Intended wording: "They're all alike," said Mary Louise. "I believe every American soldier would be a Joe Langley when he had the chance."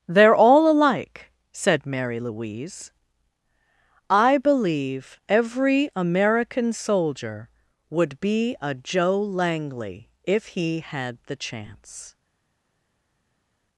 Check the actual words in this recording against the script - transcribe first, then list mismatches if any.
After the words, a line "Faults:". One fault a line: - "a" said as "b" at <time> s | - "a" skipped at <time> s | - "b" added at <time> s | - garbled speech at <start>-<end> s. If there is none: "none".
"They're all alike," said Mary Louise. "I believe every American soldier would be a Joe Langley if he had the chance."
Faults:
- "when" said as "if" at 10.2 s